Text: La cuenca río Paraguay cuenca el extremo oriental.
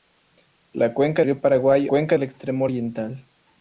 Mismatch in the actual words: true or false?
false